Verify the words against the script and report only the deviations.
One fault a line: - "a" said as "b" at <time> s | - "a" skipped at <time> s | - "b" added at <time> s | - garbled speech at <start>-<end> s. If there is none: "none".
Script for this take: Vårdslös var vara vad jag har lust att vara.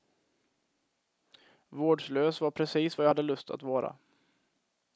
- "vara" said as "precis" at 2.5 s
- "har" said as "hade" at 3.1 s